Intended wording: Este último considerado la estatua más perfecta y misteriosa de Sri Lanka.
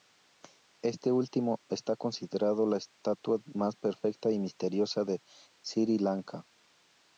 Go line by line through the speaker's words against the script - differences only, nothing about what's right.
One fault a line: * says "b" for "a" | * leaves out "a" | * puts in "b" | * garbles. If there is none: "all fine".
* puts in "está"